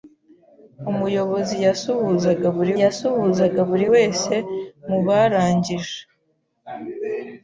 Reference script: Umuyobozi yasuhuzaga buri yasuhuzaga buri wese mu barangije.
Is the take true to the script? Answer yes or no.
yes